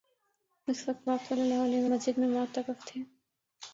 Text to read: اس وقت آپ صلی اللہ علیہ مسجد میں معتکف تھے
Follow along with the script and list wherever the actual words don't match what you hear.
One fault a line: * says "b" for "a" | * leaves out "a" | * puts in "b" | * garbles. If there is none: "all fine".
all fine